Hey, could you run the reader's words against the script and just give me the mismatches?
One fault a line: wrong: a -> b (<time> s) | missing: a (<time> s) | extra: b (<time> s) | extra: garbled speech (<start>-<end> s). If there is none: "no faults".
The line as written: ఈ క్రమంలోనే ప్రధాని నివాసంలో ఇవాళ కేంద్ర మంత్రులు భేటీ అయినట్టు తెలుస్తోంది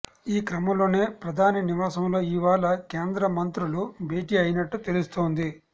no faults